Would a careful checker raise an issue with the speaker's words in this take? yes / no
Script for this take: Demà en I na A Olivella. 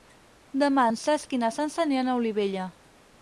yes